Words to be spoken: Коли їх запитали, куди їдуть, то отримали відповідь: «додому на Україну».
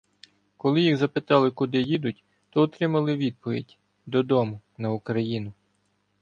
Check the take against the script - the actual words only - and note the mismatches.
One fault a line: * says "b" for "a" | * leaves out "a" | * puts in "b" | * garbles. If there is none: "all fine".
all fine